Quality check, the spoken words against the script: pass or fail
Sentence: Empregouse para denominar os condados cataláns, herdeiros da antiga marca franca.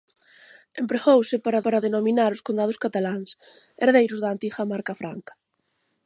fail